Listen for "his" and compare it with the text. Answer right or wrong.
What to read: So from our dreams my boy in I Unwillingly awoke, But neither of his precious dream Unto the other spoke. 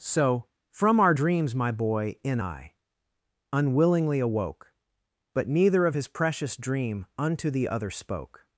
right